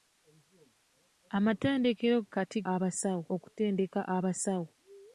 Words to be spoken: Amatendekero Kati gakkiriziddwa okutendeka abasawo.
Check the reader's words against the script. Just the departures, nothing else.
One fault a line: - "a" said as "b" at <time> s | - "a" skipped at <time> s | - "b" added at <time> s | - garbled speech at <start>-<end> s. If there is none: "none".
- "gakkiriziddwa" said as "abasawo" at 2.7 s